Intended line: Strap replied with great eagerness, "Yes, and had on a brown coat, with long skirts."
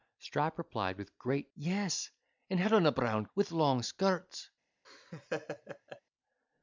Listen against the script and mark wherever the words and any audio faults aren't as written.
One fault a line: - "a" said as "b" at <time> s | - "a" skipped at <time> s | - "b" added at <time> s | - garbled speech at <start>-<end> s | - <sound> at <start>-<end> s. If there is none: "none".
- "eagerness" skipped at 1.5 s
- "coat" skipped at 3.3 s
- laugh at 4.8-6.0 s